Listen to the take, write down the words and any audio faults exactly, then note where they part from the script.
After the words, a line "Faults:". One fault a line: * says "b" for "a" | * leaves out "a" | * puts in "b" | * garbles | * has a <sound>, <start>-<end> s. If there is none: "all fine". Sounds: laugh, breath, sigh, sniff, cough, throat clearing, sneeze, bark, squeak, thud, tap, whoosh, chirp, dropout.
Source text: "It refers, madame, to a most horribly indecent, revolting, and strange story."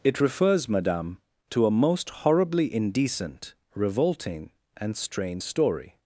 "It refers, madame, to a most horribly indecent, revolting, and strange story."
Faults:
all fine